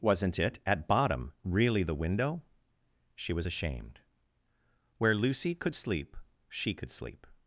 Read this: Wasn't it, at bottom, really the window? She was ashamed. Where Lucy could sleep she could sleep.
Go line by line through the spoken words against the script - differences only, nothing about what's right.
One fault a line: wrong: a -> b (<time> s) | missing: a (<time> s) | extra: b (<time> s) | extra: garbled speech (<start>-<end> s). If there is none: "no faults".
no faults